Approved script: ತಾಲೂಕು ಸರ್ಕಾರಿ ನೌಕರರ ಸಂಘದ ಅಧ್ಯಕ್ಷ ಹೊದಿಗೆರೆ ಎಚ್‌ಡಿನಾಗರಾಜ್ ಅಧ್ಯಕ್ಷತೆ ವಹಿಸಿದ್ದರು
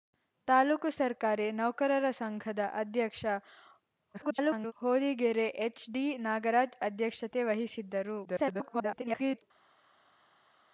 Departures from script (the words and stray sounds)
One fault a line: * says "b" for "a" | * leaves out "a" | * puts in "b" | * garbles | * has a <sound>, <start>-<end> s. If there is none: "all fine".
* garbles
* garbles